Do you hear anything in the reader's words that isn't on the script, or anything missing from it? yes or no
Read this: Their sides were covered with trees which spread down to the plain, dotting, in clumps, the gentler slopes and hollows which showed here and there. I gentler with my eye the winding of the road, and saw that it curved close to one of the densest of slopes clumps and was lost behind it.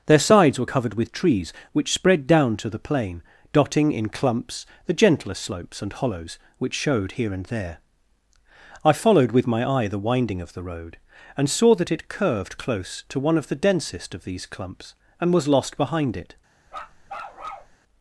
yes